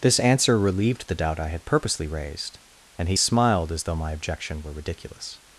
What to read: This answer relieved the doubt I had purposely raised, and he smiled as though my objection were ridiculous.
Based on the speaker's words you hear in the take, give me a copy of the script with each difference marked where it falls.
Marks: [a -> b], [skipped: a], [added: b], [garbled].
This answer relieved the doubt I had purposely raised, and he smiled as though my objection were ridiculous.